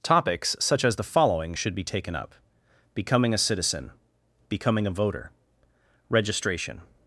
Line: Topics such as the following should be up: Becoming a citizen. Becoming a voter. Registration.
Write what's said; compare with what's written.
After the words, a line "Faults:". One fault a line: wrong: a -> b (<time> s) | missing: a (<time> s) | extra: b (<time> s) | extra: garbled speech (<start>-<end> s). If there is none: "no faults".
Topics such as the following should be taken up: Becoming a citizen. Becoming a voter. Registration.
Faults:
extra: taken (1.8 s)